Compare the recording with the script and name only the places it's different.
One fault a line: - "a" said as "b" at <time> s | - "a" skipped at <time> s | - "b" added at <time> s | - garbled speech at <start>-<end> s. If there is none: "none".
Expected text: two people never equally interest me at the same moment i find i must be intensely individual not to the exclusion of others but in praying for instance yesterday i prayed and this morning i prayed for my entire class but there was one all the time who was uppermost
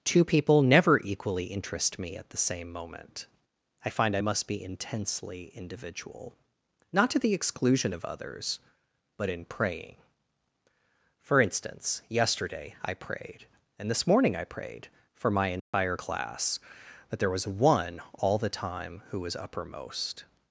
- "but" said as "that" at 17.1 s